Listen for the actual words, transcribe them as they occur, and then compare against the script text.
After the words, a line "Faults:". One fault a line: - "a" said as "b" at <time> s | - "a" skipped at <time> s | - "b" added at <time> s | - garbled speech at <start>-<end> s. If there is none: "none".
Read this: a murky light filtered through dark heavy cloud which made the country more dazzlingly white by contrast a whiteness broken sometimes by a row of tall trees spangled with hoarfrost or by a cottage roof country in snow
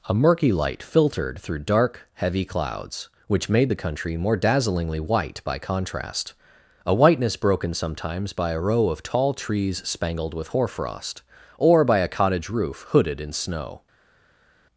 a murky light filtered through dark heavy clouds which made the country more dazzlingly white by contrast a whiteness broken sometimes by a row of tall trees spangled with hoarfrost or by a cottage roof hooded in snow
Faults:
- "cloud" said as "clouds" at 2.4 s
- "country" said as "hooded" at 12.9 s